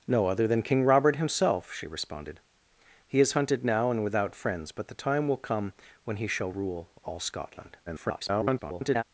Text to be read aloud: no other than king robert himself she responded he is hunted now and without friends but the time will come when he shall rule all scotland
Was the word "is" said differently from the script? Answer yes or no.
no